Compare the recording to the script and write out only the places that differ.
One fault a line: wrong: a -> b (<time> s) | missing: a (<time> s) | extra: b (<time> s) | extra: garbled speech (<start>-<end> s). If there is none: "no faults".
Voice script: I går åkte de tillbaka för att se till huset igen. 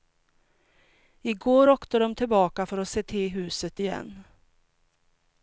no faults